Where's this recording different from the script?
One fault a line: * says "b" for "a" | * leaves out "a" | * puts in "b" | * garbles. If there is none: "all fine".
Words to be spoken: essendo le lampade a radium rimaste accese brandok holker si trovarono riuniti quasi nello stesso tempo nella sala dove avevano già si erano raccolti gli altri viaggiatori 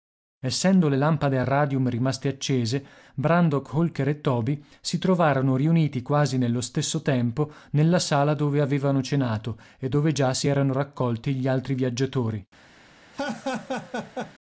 * puts in "e toby"
* puts in "cenato e dove"